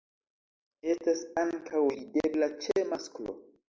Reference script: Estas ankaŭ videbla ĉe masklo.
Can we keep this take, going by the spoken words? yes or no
yes